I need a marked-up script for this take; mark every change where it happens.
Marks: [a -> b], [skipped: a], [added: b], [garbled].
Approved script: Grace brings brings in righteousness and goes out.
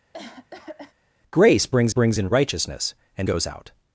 Grace brings brings in righteousness and goes out.